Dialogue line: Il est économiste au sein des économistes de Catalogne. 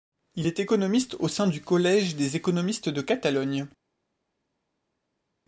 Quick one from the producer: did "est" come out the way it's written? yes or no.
yes